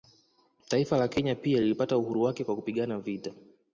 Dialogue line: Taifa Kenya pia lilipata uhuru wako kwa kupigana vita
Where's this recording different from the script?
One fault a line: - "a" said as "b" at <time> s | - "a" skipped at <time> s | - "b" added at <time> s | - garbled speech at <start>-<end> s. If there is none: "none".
- "la" added at 1.0 s
- "wako" said as "wake" at 2.2 s